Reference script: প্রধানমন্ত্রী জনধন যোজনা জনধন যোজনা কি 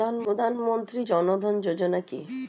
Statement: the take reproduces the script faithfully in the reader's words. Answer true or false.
false